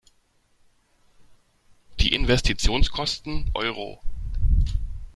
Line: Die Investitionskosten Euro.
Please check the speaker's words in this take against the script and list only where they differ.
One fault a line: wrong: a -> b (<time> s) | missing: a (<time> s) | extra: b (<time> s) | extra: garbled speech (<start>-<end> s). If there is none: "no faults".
no faults